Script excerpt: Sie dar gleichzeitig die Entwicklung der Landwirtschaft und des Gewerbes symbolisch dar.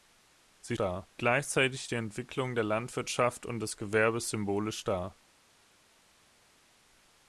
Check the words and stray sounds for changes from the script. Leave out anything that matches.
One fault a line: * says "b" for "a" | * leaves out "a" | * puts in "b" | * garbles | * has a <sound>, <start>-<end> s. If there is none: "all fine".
all fine